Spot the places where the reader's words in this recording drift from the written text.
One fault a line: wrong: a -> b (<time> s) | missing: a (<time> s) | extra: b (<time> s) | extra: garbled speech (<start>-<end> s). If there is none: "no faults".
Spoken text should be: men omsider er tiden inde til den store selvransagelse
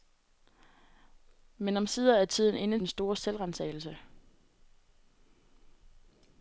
missing: til (2.8 s)